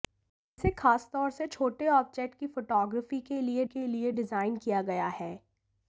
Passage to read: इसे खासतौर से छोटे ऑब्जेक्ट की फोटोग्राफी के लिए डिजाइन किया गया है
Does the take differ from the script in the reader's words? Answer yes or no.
yes